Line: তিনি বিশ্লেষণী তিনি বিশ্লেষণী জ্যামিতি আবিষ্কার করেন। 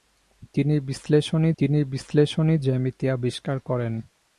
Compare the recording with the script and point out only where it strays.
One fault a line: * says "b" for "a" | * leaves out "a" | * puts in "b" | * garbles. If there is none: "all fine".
all fine